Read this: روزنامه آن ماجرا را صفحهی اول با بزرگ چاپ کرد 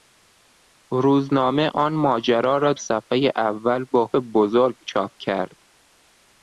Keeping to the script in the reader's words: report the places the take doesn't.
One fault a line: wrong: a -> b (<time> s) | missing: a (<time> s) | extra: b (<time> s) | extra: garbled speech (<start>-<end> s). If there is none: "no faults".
no faults